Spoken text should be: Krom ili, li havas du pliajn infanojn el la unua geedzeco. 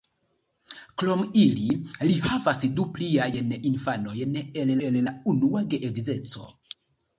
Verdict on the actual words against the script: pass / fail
fail